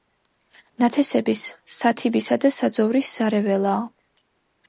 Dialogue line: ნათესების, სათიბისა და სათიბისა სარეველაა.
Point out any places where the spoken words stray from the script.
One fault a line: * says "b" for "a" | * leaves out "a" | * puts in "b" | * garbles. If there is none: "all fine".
* says "საძოვრის" for "სათიბისა"